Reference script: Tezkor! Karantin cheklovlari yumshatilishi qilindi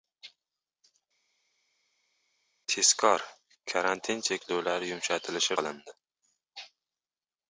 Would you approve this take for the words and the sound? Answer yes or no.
yes